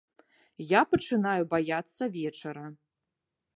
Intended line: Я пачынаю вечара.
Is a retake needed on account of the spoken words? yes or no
yes